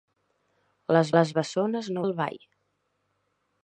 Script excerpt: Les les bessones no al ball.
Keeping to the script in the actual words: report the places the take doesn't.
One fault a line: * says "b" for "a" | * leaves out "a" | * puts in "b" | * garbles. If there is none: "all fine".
all fine